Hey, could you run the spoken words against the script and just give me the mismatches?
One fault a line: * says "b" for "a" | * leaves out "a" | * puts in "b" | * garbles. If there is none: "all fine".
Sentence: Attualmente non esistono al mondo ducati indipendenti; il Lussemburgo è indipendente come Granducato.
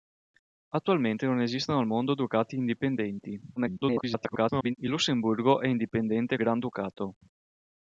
* garbles
* leaves out "come"